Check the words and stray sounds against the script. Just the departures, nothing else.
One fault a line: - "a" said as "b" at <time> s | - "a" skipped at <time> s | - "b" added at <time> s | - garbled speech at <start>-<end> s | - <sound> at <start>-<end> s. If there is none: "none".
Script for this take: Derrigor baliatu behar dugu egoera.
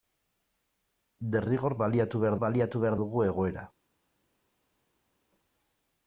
- "baliatu behar" added at 2.4 s